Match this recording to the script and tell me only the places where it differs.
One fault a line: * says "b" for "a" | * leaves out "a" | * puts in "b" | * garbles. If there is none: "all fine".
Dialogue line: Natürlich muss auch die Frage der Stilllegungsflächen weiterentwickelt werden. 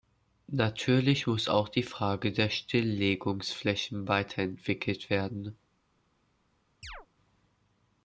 all fine